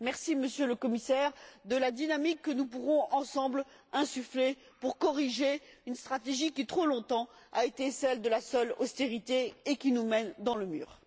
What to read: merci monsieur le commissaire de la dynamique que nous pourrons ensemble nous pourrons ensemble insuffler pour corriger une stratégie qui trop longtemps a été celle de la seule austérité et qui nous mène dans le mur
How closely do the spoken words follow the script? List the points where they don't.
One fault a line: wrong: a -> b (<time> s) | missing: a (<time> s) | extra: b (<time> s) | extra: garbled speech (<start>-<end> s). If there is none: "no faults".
missing: nous pourrons ensemble (3.6 s)